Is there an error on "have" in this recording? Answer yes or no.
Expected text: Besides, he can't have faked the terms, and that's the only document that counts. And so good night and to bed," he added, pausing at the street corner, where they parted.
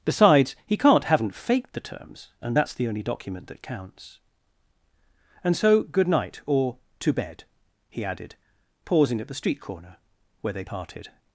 yes